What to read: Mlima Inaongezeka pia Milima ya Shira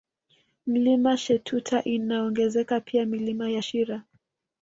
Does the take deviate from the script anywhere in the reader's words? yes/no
yes